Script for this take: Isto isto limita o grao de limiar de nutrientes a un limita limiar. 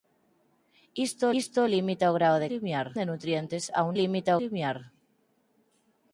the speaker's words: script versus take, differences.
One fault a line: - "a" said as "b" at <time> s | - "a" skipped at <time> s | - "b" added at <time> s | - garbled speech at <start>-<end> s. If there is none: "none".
none